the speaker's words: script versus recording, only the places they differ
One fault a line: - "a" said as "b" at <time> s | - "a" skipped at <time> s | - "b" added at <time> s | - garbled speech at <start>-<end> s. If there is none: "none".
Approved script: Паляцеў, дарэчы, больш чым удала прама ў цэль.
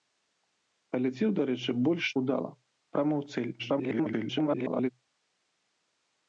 - "чым" skipped at 2.0 s
- garbled speech at 3.6-4.9 s